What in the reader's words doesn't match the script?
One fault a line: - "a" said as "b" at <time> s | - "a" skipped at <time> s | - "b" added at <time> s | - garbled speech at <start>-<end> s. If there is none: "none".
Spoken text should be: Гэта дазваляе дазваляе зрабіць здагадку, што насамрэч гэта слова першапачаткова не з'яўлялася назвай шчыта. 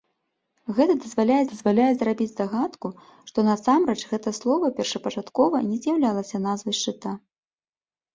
none